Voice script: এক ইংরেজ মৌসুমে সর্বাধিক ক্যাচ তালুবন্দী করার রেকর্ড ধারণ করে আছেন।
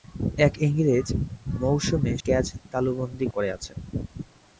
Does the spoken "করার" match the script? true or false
false